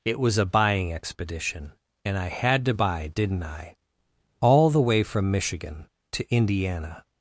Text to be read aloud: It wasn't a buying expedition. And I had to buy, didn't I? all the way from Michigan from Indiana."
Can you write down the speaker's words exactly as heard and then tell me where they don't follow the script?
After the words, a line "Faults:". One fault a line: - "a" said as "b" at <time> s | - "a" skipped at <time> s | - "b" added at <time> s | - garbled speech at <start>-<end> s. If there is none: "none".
It was a buying expedition. And I had to buy, didn't I? all the way from Michigan to Indiana."
Faults:
- "wasn't" said as "was" at 0.2 s
- "from" said as "to" at 6.1 s